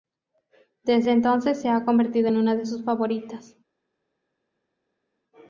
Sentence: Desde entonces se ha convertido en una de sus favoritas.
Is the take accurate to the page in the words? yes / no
yes